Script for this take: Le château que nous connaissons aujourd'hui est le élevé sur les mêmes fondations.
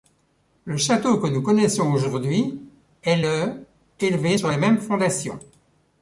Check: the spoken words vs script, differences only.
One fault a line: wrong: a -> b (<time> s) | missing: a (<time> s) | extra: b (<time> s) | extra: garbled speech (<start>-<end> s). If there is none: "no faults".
no faults